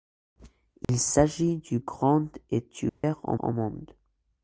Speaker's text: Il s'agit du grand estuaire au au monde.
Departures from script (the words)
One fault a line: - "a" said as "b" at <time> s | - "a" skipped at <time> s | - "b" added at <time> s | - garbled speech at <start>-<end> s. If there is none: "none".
none